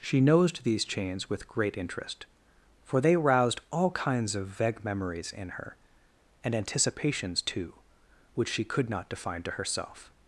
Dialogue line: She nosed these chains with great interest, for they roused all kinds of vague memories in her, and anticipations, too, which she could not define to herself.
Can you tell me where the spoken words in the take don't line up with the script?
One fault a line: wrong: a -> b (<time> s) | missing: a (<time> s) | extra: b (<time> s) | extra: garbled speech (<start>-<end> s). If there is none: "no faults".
no faults